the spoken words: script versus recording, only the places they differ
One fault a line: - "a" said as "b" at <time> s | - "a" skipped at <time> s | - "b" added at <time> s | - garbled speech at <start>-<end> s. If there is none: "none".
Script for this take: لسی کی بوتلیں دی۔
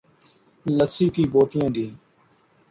none